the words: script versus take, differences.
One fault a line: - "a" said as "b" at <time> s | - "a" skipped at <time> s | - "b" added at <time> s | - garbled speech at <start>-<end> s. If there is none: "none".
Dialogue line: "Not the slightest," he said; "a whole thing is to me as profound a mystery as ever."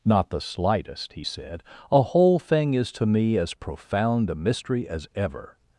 none